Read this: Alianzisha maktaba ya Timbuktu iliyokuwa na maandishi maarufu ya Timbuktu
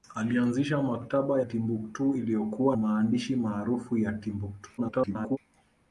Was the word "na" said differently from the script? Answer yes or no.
yes